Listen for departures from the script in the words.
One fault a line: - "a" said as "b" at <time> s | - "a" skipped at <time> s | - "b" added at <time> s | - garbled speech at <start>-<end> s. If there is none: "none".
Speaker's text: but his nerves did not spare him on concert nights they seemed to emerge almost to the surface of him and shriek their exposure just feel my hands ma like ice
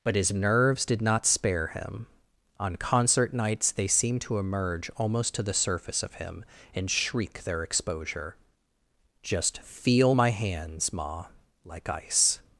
none